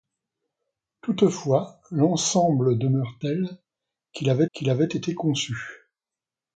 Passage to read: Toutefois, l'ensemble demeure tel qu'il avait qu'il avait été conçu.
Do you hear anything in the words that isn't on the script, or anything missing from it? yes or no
no